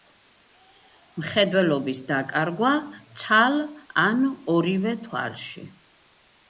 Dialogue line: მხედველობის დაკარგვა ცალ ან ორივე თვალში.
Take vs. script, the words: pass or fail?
pass